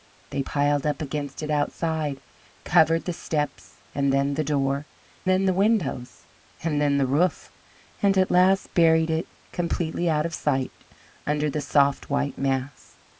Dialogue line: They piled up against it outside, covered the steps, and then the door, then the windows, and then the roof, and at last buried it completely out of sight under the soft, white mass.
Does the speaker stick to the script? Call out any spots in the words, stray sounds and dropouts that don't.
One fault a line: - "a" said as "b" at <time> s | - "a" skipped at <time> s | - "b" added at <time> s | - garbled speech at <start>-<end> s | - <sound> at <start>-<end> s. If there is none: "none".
none